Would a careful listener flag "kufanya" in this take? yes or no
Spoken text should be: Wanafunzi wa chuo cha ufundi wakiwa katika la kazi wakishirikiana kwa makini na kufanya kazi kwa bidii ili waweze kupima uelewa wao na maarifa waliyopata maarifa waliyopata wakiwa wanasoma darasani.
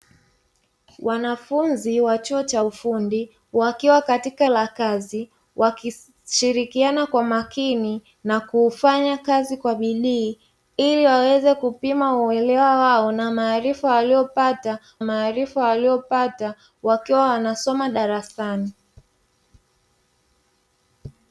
no